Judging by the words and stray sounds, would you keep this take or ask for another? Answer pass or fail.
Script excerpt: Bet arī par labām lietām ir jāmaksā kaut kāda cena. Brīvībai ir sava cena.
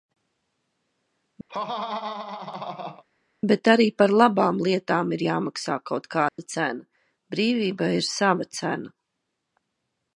fail